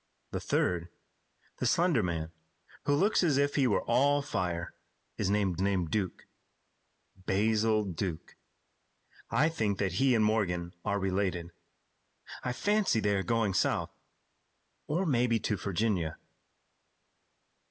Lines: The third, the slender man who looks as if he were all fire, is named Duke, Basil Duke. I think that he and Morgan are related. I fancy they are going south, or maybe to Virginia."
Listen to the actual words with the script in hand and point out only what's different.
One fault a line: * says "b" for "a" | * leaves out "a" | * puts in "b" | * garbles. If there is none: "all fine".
* puts in "named"